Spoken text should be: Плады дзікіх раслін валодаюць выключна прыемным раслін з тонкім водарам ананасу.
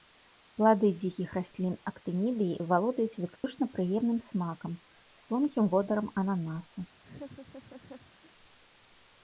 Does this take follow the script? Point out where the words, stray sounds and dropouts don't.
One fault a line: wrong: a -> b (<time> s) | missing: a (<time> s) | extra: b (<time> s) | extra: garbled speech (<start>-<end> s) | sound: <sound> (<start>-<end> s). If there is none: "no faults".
extra: актынідыі (1.9 s)
sound: dropout (3.4-3.4 s)
wrong: раслін -> смакам (4.3 s)
sound: laugh (7.0-8.3 s)